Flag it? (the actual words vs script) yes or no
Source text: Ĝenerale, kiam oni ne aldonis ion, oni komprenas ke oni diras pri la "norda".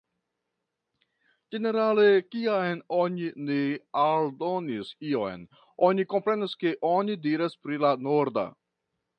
no